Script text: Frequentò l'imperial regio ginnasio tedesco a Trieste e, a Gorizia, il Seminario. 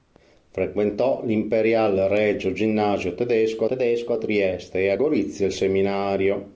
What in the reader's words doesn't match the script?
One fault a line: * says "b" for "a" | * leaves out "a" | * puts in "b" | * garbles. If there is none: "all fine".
* puts in "tedesco"